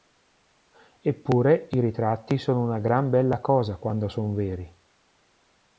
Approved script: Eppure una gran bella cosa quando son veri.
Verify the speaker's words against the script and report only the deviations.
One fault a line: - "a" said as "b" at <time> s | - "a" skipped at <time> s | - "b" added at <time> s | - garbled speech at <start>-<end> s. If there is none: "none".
- "i ritratti sono" added at 1.7 s